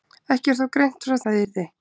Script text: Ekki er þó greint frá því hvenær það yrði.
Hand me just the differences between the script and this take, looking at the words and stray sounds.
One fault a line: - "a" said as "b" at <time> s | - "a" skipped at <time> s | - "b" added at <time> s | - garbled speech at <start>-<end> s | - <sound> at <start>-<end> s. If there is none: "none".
- "því hvenær" skipped at 1.2 s